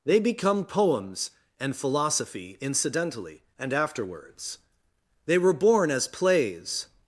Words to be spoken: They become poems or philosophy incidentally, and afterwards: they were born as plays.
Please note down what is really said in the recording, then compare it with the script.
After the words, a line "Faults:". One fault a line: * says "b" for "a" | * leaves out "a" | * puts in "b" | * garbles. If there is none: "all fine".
They become poems and philosophy incidentally, and afterwards: they were born as plays.
Faults:
* says "and" for "or"